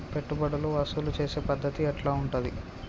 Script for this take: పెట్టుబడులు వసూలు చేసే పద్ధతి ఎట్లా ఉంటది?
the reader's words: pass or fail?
pass